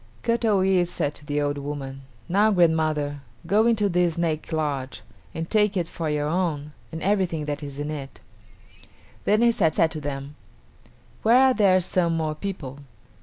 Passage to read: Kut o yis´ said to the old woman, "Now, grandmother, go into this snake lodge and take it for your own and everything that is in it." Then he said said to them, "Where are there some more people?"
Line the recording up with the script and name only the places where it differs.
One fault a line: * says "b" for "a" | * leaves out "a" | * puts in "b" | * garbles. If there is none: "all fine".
all fine